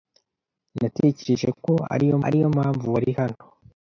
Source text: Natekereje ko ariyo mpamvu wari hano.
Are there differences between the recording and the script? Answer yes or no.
yes